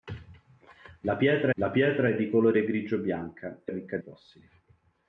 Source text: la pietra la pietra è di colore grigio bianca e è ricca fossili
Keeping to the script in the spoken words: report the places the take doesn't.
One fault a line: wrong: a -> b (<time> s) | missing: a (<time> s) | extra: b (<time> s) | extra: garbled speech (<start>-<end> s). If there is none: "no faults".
no faults